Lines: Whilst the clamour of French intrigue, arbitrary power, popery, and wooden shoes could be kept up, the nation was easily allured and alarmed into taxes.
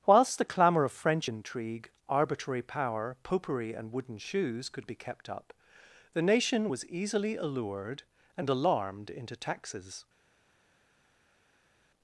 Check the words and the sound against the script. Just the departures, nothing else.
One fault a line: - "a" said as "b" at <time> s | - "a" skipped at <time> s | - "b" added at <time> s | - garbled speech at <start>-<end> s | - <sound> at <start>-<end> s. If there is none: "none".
none